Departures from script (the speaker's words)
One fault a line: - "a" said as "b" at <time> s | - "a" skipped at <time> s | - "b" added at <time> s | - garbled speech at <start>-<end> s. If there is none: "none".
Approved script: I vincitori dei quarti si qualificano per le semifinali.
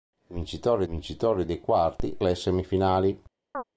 - "vincitori" added at 0.9 s
- "si qualificano per" skipped at 2.2 s